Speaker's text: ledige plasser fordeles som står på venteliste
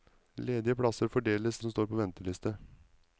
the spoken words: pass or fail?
pass